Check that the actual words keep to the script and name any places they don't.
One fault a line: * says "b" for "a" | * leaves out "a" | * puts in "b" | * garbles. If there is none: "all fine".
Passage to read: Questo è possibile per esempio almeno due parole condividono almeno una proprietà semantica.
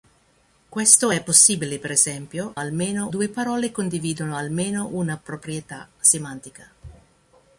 all fine